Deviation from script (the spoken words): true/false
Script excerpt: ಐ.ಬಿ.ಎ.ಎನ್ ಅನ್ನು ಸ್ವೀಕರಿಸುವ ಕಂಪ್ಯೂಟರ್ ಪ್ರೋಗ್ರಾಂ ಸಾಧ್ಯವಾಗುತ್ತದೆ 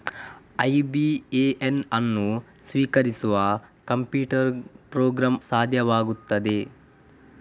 false